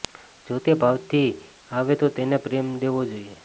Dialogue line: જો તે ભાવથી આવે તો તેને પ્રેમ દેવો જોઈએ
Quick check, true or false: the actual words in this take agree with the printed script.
true